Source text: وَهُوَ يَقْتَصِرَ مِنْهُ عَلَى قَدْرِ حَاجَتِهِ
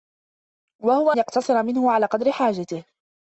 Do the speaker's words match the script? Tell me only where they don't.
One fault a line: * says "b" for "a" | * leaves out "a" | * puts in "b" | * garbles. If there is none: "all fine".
all fine